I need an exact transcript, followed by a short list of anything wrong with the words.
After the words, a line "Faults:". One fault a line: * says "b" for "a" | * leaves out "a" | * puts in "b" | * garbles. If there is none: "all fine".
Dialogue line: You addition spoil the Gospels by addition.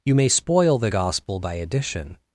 You may spoil the Gospel by addition.
Faults:
* says "may" for "addition"
* says "Gospel" for "Gospels"